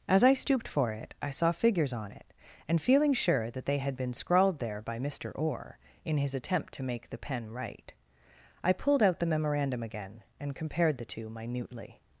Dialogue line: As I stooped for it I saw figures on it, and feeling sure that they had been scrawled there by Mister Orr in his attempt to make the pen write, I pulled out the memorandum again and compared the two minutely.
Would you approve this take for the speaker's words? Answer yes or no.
yes